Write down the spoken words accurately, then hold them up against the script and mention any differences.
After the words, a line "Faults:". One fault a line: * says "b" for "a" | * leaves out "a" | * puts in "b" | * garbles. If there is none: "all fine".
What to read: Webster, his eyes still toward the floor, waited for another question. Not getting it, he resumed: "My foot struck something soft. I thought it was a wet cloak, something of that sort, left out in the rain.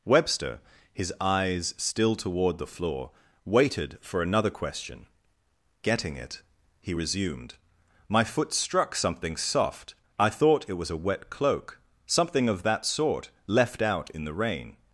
Webster, his eyes still toward the floor, waited for another question. Getting it, he resumed: "My foot struck something soft. I thought it was a wet cloak, something of that sort, left out in the rain.
Faults:
* leaves out "Not"